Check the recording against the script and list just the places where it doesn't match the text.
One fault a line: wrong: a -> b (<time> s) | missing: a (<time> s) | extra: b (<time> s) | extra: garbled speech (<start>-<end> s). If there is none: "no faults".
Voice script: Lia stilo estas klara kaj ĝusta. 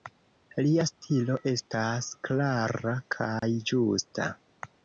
no faults